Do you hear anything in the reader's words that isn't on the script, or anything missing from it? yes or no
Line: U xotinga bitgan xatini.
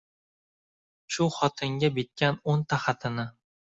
yes